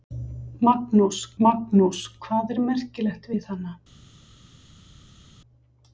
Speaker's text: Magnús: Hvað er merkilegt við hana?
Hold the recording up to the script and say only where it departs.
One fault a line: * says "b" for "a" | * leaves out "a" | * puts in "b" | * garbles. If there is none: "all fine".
* puts in "magnús"